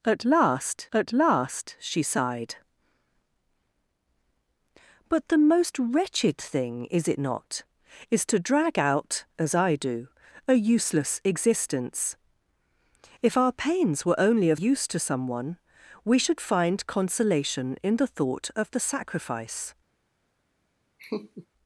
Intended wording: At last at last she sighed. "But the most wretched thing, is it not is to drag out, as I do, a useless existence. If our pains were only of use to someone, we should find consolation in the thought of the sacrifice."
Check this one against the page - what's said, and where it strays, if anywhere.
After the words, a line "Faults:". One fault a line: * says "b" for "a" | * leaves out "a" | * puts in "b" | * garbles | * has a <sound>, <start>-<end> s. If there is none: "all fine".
At last at last she sighed. "But the most wretched thing, is it not is to drag out, as I do, a useless existence. If our pains were only of use to someone, we should find consolation in the thought of the sacrifice."
Faults:
* has a laugh, 21.0-21.5 s